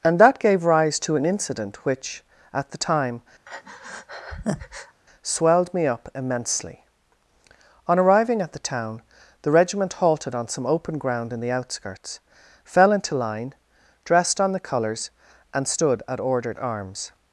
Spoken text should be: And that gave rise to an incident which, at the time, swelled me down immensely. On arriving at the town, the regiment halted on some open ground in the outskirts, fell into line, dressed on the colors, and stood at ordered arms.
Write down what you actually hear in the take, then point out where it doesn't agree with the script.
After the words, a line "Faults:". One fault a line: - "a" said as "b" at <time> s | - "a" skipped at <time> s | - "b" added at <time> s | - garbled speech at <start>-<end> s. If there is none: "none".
And that gave rise to an incident which, at the time, swelled me up immensely. On arriving at the town, the regiment halted on some open ground in the outskirts, fell into line, dressed on the colors, and stood at ordered arms.
Faults:
- "down" said as "up" at 5.9 s